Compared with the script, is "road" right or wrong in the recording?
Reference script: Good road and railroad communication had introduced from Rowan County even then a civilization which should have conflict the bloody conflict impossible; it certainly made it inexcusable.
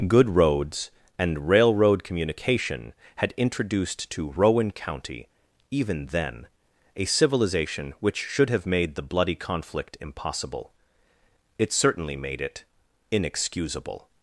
wrong